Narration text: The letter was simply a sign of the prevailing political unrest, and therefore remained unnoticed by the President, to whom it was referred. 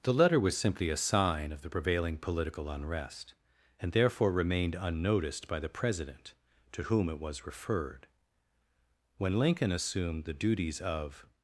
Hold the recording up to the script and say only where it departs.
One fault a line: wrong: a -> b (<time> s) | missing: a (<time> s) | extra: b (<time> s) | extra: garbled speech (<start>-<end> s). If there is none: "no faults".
extra: When Lincoln assumed the duties of (9.2 s)